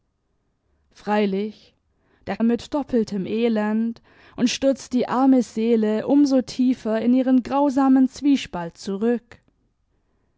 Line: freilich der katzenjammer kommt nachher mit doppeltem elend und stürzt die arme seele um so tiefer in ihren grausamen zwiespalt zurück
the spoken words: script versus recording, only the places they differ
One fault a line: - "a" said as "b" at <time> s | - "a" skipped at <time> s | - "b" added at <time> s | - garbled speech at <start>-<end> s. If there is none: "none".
- "katzenjammer kommt nachher" skipped at 2.4 s